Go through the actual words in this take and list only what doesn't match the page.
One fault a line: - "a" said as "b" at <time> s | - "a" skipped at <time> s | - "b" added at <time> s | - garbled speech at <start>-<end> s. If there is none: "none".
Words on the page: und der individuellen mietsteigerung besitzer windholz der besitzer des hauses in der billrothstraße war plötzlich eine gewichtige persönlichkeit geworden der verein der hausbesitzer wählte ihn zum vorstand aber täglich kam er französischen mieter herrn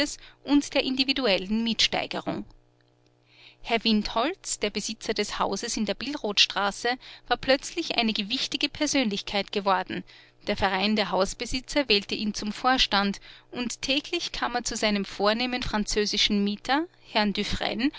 - "besitzer" said as "herr" at 3.6 s
- "aber" said as "und" at 13.5 s
- "zu seinem vornehmen" added at 14.6 s